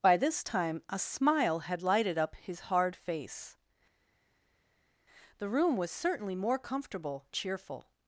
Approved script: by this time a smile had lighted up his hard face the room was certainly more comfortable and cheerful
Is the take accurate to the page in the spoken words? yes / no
no